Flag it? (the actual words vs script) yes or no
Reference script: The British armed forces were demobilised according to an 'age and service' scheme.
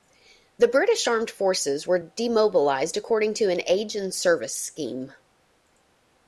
no